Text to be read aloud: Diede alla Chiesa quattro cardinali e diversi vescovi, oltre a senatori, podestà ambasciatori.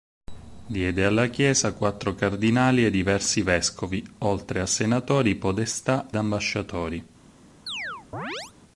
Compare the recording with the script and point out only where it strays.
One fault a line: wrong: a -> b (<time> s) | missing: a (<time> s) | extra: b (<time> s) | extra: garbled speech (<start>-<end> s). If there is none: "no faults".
no faults